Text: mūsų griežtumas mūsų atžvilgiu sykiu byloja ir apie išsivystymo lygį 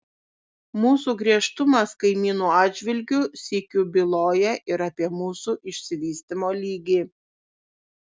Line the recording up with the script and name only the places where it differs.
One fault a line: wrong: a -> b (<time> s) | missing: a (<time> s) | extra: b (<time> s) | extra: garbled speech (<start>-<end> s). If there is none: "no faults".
wrong: mūsų -> kaimynų (2.0 s)
extra: mūsų (5.2 s)